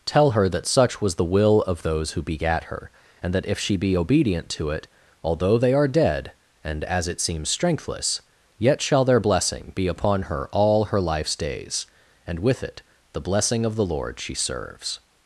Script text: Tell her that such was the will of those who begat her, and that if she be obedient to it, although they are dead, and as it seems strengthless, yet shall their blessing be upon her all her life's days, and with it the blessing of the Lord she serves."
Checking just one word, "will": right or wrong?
right